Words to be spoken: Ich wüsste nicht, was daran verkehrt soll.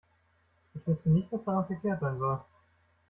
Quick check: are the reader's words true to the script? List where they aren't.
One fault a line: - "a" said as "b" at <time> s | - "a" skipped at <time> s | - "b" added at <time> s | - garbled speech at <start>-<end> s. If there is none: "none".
- "sein" added at 2.0 s